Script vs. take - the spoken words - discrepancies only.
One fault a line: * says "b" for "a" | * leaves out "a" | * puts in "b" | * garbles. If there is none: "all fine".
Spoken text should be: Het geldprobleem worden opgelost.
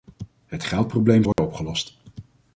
all fine